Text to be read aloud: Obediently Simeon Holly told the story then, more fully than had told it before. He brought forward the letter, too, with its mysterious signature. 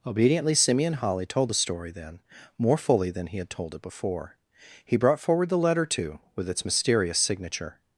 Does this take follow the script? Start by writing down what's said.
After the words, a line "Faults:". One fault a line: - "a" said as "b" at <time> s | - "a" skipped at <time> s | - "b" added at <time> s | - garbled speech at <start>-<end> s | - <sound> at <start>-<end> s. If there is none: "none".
Obediently Simeon Holly told the story then, more fully than he had told it before. He brought forward the letter, too, with its mysterious signature.
Faults:
- "he" added at 3.3 s